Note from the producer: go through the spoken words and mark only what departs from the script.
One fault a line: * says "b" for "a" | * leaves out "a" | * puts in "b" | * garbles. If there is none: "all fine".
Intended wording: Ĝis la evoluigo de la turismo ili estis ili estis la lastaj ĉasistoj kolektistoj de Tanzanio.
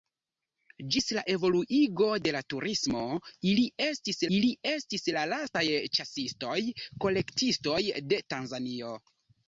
all fine